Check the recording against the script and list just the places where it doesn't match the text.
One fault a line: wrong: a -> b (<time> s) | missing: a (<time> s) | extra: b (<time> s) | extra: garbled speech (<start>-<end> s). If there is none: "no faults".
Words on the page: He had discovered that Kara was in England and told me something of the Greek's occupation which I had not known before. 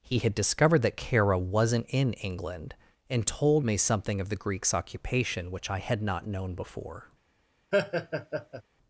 wrong: was -> wasn't (1.4 s)